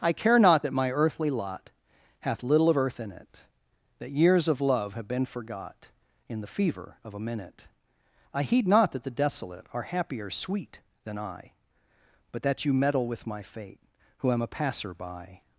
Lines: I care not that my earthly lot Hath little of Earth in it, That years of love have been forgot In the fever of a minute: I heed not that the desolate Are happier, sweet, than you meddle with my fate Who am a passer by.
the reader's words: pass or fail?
fail